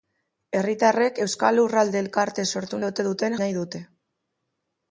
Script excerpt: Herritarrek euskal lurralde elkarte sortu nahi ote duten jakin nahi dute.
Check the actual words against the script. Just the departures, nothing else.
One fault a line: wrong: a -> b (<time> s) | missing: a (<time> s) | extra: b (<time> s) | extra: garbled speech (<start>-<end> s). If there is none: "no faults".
missing: nahi (2.8 s)
missing: jakin (3.4 s)